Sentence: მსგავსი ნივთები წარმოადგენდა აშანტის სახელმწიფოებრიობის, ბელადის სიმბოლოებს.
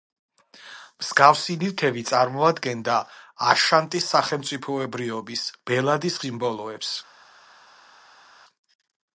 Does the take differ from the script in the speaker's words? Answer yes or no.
no